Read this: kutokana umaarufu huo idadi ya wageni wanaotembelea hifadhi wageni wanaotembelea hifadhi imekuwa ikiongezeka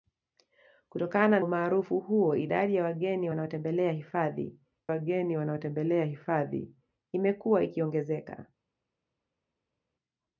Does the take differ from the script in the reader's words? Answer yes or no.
no